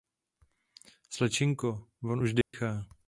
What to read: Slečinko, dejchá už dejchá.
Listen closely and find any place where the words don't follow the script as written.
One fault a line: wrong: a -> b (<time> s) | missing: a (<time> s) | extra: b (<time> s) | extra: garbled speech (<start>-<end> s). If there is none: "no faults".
wrong: dejchá -> von (2.0 s)